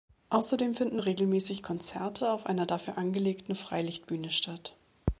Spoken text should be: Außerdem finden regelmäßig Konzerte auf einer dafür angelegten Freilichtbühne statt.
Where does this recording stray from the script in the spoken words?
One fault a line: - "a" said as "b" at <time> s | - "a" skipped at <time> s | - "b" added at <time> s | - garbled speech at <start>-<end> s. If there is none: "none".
none